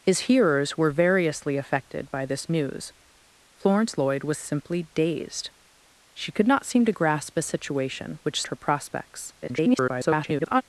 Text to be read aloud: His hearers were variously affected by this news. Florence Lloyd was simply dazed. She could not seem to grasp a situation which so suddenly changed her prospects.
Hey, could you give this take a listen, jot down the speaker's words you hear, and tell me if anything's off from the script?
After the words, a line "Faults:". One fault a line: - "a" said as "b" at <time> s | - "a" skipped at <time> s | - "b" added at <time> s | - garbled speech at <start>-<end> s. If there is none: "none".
His hearers were variously affected by this news. Florence Lloyd was simply dazed. She could not seem to grasp a situation which her prospects. [garbled]
Faults:
- "so suddenly changed" skipped at 8.4 s
- garbled speech at 9.4-10.6 s